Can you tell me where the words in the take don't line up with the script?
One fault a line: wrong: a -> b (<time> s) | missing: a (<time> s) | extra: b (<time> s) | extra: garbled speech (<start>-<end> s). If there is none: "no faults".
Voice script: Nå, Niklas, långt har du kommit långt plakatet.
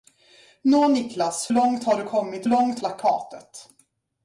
no faults